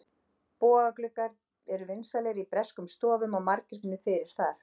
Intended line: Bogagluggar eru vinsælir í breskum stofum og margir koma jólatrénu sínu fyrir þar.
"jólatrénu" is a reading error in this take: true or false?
true